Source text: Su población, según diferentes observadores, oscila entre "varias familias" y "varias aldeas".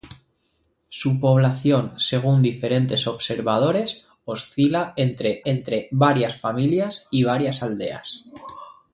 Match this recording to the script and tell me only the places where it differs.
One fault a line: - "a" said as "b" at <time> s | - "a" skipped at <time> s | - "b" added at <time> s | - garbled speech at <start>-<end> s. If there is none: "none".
- "entre" added at 5.4 s